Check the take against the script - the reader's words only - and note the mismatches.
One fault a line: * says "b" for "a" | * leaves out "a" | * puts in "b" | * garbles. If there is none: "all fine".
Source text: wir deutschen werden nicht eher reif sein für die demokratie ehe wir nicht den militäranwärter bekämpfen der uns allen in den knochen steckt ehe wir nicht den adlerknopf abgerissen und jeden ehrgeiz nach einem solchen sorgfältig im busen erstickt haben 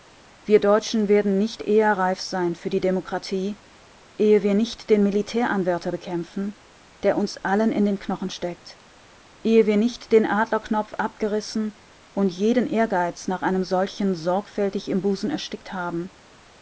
all fine